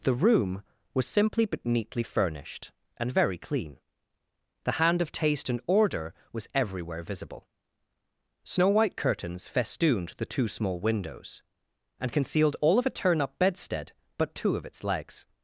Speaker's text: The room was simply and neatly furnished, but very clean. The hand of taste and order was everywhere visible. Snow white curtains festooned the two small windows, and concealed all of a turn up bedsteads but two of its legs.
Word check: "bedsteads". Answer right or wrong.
wrong